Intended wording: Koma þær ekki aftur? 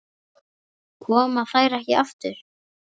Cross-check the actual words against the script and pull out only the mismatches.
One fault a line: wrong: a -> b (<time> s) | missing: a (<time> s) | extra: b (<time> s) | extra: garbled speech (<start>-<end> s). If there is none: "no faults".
no faults